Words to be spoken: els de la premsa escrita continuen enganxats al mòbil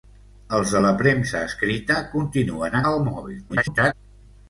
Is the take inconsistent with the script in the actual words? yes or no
yes